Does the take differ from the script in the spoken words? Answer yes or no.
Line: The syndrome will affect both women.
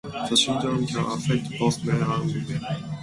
yes